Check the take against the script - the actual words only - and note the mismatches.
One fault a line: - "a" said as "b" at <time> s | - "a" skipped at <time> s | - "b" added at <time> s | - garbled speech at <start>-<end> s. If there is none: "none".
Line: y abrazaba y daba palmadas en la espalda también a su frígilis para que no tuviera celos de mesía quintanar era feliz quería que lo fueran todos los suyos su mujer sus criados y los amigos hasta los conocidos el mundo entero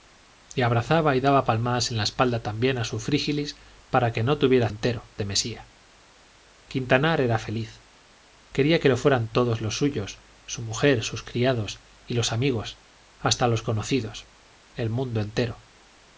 - "celos" said as "entero" at 4.7 s